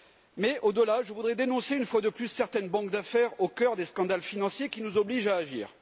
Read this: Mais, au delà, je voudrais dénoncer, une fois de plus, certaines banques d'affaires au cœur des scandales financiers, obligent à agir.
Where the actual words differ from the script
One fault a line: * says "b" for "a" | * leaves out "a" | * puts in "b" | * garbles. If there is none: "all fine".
* puts in "qui nous"